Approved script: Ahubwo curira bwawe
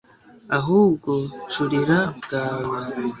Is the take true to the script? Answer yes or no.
yes